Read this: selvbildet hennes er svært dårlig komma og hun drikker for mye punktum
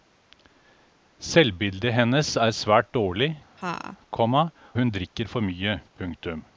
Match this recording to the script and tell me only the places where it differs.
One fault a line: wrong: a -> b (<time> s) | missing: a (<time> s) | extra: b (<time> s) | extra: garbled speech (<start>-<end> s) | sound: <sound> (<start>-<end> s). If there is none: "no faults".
sound: laugh (3.6-4.0 s)
missing: og (4.5 s)